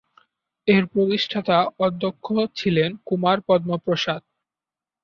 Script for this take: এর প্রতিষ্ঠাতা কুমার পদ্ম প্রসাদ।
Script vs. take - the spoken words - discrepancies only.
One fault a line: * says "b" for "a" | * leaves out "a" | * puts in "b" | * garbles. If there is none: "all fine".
* puts in "অধ্যক্ষ ছিলেন"